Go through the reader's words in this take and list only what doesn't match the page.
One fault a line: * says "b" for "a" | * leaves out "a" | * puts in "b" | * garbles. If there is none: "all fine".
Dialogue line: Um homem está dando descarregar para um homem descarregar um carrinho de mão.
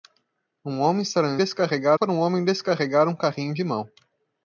all fine